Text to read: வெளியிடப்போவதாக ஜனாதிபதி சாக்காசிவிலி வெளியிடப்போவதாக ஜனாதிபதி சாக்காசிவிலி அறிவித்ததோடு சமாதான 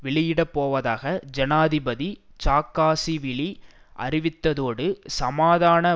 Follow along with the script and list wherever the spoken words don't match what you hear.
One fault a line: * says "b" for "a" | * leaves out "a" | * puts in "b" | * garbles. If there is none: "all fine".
* leaves out "வெளியிடப்போவதாக ஜனாதிபதி சாக்காசிவிலி"